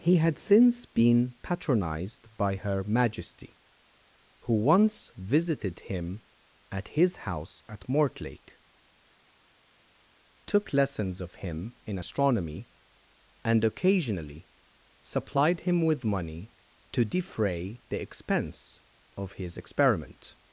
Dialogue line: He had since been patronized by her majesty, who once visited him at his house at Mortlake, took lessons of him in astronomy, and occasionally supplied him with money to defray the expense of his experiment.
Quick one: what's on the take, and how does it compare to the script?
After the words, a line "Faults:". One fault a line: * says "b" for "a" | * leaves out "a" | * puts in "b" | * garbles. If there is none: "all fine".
He had since been patronized by her majesty, who once visited him at his house at Mortlake, took lessons of him in astronomy, and occasionally supplied him with money to defray the expense of his experiment.
Faults:
all fine